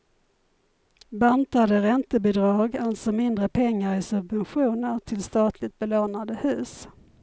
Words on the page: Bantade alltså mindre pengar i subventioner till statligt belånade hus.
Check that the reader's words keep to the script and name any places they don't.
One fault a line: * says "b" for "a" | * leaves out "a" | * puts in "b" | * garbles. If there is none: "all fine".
* puts in "räntebidrag"